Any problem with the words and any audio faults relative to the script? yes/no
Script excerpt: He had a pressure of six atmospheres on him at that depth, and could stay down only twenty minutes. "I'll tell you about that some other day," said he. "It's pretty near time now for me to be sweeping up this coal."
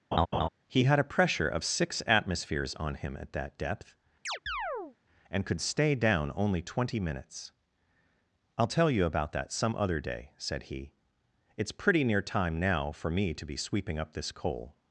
yes